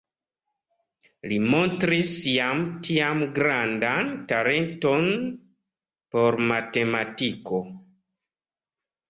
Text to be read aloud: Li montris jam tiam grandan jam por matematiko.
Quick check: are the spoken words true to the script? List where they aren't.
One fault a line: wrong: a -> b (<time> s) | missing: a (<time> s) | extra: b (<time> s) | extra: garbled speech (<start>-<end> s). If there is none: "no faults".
wrong: jam -> talenton (4.3 s)